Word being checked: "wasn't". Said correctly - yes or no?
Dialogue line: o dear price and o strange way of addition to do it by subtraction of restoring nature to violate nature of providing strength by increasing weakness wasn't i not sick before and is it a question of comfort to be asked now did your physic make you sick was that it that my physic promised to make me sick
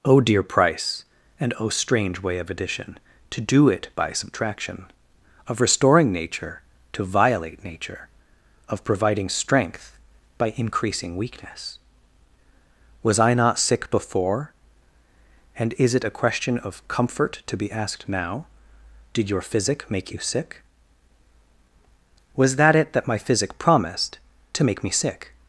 no